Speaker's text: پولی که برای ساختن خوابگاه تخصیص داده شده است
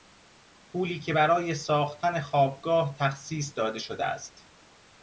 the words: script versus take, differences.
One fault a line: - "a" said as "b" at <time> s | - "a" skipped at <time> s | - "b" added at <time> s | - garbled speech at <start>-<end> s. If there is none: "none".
none